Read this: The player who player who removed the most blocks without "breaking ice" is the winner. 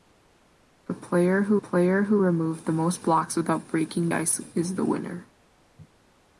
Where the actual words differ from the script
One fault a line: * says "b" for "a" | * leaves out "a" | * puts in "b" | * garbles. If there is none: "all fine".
all fine